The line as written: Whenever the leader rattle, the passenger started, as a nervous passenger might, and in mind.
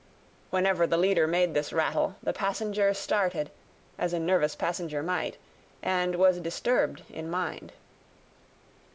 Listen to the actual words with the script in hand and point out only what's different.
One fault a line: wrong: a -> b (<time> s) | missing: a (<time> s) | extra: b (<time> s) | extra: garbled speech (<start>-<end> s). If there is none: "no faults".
extra: made this (1.3 s)
extra: was disturbed (6.2 s)